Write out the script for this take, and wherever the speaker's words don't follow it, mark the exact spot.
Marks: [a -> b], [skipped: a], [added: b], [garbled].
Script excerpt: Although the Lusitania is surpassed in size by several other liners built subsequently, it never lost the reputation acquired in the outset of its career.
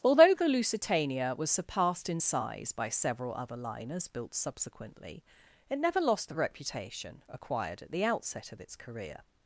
Although the Lusitania [is -> was] surpassed in size by several other liners built subsequently, it never lost the reputation acquired [in -> at] the outset of its career.